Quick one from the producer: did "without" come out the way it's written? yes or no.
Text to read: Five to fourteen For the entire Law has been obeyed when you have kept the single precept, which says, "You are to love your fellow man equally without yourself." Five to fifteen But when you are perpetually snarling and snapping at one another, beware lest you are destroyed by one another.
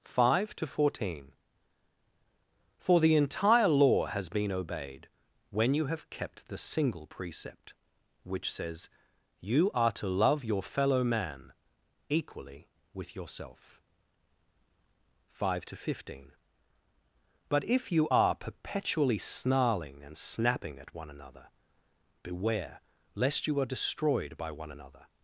no